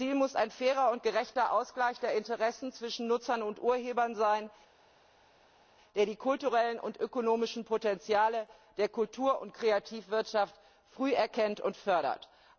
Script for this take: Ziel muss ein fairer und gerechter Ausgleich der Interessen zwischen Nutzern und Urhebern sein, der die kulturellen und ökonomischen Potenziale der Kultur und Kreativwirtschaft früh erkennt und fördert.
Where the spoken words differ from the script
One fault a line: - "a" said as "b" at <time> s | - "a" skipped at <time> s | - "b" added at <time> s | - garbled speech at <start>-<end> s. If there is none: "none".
none